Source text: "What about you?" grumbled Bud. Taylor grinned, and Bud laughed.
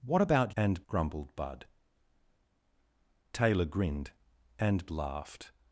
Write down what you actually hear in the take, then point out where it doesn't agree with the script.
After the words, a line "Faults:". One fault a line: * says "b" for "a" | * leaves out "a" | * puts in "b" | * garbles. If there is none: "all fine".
"What about and?" grumbled Bud. Taylor grinned, and Laughed.
Faults:
* says "and" for "you"
* leaves out "Bud"